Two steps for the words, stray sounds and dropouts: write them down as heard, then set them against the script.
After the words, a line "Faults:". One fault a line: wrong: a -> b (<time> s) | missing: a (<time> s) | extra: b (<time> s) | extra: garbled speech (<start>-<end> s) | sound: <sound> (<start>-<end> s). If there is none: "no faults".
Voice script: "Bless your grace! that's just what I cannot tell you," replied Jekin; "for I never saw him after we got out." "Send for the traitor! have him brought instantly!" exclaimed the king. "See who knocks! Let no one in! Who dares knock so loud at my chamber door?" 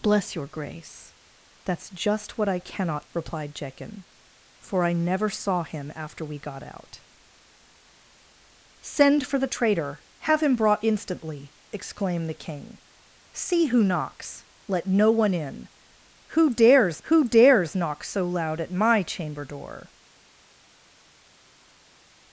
"Bless your grace! that's just what I cannot," replied Jekin; "for I never saw him after we got out." "Send for the traitor! have him brought instantly!" exclaimed the king. "See who knocks! Let no one in! Who dares who dares knock so loud at my chamber door?"
Faults:
missing: tell you (3.1 s)
extra: who dares (17.0 s)